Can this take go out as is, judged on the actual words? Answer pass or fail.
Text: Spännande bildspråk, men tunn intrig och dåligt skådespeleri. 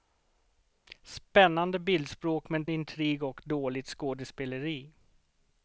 fail